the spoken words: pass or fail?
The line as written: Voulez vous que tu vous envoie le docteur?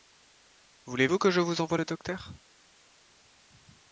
fail